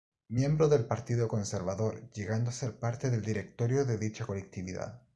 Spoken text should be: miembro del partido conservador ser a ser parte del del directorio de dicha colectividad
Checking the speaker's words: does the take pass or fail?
fail